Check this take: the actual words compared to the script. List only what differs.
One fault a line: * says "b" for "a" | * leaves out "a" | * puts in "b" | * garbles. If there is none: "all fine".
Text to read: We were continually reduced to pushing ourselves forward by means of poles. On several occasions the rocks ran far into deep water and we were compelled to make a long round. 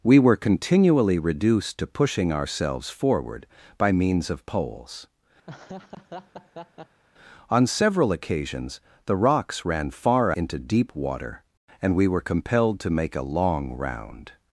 all fine